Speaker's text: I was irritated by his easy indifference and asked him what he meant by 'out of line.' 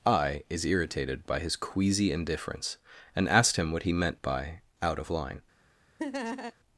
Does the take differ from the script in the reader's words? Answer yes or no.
yes